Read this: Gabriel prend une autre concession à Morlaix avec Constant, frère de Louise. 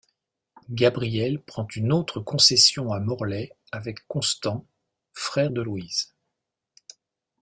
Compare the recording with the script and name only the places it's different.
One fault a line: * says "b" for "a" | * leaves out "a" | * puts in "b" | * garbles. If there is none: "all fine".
all fine